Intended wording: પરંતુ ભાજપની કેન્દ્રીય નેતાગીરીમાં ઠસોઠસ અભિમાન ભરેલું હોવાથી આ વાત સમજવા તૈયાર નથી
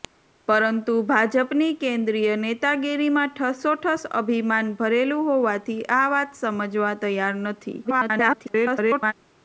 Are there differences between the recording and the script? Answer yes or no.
yes